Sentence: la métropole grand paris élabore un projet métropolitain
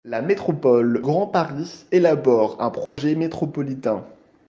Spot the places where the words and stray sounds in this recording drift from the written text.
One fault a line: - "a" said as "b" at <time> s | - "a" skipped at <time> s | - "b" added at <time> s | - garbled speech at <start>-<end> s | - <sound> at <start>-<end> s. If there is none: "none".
- dropout at 2.9-3.0 s